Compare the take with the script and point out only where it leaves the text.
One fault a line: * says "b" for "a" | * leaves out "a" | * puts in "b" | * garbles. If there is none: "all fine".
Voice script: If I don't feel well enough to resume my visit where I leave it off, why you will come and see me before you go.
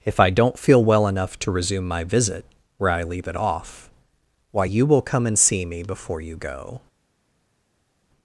all fine